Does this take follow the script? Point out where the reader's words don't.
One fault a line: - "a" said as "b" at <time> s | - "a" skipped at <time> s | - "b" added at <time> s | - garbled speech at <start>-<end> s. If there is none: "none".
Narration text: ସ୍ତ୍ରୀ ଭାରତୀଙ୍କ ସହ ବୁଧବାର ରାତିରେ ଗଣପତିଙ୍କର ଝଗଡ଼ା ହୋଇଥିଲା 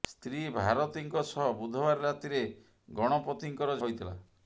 - "ଝଗଡ଼ା" skipped at 3.8 s